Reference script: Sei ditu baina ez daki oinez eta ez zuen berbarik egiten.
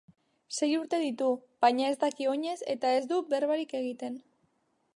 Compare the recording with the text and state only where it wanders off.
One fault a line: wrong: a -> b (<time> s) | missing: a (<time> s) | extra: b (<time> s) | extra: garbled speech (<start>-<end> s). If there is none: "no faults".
extra: urte (0.8 s)
wrong: zuen -> du (3.1 s)